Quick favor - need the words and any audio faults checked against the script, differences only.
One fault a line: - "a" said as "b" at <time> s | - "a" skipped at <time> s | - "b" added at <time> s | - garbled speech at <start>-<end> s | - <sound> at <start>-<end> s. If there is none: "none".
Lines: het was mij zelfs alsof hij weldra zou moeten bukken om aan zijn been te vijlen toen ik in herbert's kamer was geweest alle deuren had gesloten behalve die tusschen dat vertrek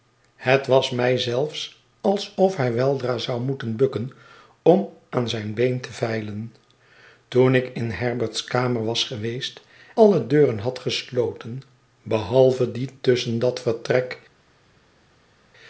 none